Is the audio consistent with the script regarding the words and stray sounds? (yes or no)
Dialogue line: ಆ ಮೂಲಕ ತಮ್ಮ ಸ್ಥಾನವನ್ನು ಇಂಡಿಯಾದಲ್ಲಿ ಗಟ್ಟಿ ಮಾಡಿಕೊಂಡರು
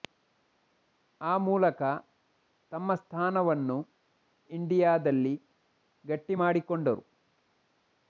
yes